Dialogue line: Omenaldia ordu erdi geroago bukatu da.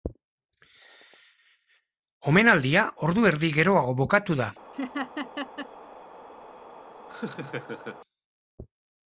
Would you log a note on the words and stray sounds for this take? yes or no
yes